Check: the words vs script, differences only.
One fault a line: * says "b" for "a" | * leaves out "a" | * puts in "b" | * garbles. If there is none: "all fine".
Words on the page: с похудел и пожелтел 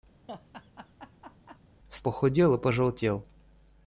all fine